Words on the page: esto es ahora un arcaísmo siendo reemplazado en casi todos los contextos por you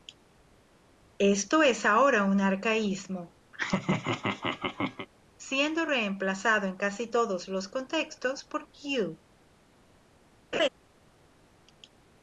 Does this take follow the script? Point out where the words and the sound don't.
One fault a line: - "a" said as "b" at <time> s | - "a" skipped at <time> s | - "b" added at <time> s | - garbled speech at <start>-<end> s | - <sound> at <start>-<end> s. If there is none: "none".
- laugh at 3.5-5.1 s
- laugh at 10.5-10.7 s